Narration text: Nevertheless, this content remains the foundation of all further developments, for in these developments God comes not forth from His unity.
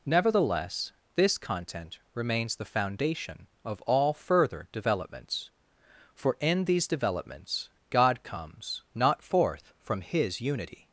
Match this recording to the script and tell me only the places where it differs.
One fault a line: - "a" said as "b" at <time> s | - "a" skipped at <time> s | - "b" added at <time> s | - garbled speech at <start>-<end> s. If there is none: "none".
none